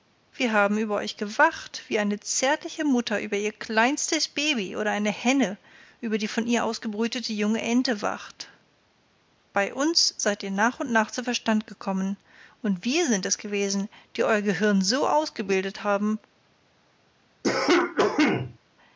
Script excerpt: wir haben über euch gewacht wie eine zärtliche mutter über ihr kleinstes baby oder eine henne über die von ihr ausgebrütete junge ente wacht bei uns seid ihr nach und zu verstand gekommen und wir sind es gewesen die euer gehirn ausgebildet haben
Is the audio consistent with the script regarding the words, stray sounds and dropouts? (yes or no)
no